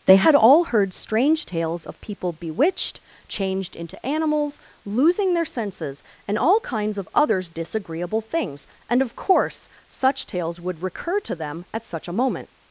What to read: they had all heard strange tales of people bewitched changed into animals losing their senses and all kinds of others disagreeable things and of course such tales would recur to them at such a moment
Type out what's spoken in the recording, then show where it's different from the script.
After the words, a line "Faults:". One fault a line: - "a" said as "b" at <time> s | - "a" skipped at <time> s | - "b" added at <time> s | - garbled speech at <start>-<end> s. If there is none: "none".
they had all heard strange tales of people bewitched changed into animals losing their senses and all kinds of others disagreeable things and of course such tales would recur to them at such a moment
Faults:
none